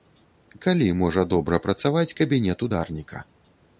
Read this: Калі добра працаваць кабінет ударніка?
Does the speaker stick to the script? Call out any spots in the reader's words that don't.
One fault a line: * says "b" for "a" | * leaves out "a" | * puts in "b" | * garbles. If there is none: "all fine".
* puts in "можа"